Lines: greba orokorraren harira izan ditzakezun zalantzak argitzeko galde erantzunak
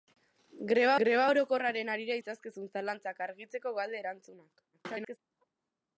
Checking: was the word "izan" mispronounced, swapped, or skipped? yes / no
yes